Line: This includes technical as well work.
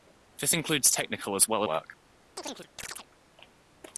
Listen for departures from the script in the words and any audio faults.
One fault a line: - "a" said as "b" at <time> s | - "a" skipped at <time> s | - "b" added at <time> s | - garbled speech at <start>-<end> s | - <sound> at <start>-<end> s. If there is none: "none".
- chirp at 2.4-3.1 s